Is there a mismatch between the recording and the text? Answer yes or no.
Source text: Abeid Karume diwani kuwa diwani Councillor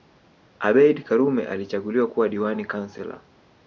yes